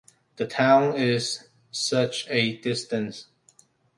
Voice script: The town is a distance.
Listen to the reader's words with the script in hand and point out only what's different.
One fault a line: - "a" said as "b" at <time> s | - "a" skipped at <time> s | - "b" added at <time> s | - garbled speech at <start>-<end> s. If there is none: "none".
- "such" added at 1.7 s